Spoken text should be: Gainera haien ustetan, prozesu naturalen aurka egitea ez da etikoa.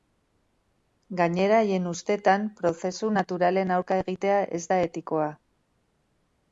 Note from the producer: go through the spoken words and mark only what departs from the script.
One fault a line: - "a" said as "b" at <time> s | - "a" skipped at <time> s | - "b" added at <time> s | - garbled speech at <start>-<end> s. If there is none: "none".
none